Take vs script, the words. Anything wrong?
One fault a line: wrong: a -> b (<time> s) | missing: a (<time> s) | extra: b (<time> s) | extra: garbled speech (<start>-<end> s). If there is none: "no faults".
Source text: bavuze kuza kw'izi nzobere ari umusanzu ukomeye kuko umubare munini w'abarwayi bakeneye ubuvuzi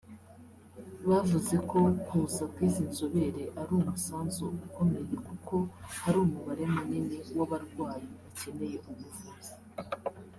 extra: ko (1.7 s)
extra: hari (6.0 s)